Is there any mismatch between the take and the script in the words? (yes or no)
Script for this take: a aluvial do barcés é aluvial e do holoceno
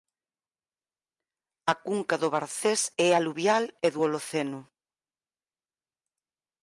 yes